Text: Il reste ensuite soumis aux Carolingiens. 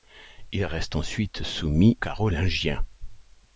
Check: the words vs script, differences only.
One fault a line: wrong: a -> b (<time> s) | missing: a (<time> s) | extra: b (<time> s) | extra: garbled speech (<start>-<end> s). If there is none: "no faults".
missing: aux (2.0 s)